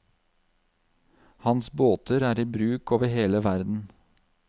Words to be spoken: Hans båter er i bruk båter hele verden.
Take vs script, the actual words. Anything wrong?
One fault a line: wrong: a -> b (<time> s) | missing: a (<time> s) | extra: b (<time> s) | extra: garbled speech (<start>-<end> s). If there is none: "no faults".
wrong: båter -> over (3.0 s)